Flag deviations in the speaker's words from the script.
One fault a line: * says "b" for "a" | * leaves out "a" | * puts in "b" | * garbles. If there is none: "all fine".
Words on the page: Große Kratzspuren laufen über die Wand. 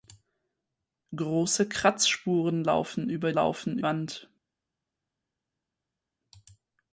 * says "laufen" for "die"